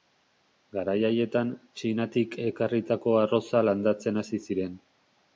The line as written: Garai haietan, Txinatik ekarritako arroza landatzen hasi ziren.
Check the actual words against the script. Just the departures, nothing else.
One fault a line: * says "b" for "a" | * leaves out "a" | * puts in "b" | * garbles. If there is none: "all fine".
all fine